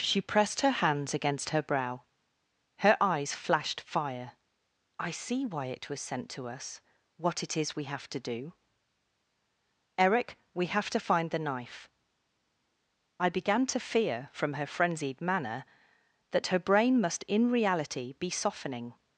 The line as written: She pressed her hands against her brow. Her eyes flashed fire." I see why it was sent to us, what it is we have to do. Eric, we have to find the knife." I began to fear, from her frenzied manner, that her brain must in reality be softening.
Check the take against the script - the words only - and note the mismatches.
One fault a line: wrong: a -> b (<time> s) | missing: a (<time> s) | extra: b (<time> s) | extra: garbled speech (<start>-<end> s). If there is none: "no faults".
no faults